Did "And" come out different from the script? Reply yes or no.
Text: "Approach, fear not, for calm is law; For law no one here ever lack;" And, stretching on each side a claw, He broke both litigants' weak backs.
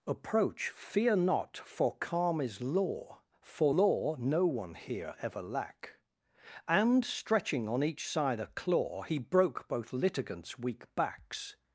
no